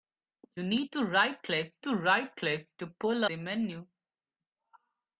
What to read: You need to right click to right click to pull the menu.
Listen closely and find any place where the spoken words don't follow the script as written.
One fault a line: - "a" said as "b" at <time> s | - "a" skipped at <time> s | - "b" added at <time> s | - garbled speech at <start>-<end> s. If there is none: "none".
none